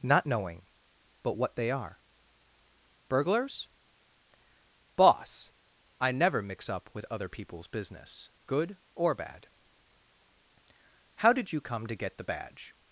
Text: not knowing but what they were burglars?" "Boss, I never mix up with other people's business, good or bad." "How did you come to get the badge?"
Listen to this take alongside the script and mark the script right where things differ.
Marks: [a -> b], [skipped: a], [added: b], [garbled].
not knowing but what they [were -> are] burglars?" "Boss, I never mix up with other people's business, good or bad." "How did you come to get the badge?"